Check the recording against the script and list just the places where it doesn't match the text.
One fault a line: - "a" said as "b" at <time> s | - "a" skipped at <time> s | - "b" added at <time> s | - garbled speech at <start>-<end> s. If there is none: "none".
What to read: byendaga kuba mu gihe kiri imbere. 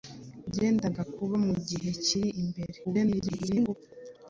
- garbled speech at 2.8-3.7 s